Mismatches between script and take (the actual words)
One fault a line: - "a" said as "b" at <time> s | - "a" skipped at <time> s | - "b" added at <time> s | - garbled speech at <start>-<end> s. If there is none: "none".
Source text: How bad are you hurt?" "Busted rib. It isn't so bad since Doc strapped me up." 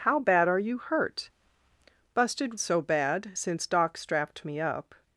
- "rib It isn't" skipped at 2.6 s